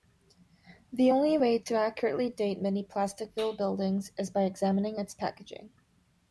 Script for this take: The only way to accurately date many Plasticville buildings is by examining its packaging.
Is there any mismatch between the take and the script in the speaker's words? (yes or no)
no